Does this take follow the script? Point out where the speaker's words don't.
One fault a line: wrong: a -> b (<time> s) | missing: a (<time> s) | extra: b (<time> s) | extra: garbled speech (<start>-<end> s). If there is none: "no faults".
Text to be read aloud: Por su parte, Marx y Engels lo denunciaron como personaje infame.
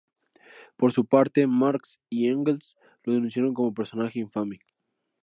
no faults